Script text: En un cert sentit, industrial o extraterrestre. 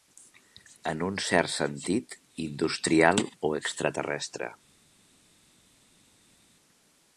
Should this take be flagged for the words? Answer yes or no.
no